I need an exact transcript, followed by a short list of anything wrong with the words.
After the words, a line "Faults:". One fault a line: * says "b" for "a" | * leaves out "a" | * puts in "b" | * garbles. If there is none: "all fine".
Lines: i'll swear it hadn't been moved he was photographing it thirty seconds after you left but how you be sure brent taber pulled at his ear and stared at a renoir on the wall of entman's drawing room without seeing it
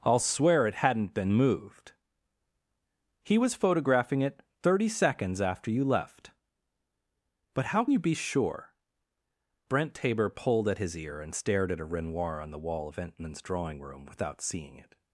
i'll swear it hadn't been moved he was photographing it thirty seconds after you left but how you be sure brent taber pulled at his ear and stared at a renoir on the wall of entman's drawing room without seeing it
Faults:
all fine